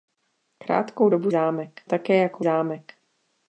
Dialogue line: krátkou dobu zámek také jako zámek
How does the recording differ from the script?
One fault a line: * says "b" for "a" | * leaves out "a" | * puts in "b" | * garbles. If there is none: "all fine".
all fine